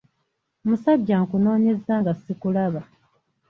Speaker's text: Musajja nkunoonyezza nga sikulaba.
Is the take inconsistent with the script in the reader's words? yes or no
no